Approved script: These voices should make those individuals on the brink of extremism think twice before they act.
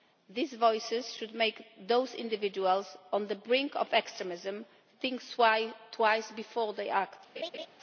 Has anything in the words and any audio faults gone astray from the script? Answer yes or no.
yes